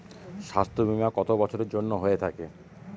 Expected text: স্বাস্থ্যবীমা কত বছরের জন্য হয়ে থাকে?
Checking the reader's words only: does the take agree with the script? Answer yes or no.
yes